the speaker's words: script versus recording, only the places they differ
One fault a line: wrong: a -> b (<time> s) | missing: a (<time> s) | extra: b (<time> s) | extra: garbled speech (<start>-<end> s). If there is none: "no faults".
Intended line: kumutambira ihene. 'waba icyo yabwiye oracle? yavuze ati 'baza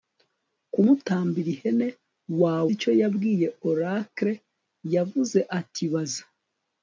no faults